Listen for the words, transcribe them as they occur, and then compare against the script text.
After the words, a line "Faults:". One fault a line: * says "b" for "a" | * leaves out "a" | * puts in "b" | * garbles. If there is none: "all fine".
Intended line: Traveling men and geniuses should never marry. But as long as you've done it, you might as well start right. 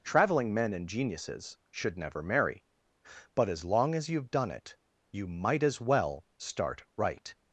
Traveling men and geniuses should never marry. But as long as you've done it, you might as well start right.
Faults:
all fine